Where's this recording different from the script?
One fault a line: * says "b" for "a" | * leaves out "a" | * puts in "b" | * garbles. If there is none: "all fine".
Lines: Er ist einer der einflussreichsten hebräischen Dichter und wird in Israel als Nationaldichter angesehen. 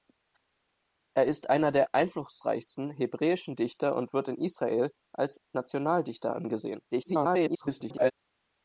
* garbles